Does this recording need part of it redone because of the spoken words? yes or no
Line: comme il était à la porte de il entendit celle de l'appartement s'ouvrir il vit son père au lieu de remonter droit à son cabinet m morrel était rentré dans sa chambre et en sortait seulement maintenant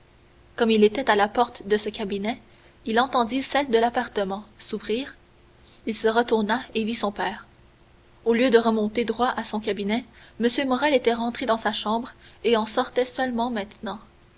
yes